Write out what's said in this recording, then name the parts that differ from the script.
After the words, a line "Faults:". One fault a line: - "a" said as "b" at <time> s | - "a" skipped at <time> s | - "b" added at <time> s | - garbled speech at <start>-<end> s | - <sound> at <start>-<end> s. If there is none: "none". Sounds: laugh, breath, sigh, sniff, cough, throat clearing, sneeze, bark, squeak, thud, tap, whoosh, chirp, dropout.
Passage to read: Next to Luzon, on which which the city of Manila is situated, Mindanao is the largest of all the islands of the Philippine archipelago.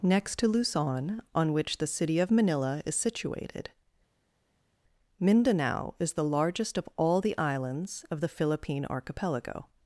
Next to Luzon, on which the city of Manila is situated, Mindanao is the largest of all the islands of the Philippine archipelago.
Faults:
- "which" skipped at 1.8 s